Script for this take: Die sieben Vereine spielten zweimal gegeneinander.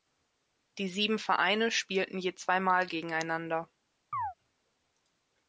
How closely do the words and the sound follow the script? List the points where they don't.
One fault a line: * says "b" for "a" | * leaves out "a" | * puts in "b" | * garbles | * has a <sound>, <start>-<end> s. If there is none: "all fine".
* puts in "je"
* has a chirp, 4.1-4.3 s